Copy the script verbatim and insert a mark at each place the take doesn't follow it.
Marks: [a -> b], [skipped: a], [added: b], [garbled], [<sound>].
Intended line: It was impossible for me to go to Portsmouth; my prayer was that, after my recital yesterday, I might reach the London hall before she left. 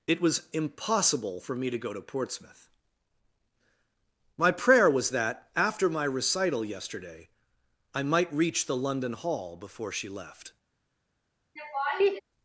It was impossible for me to go to Portsmouth; my prayer was that, after my recital yesterday, I might reach the London hall before she left. [laugh]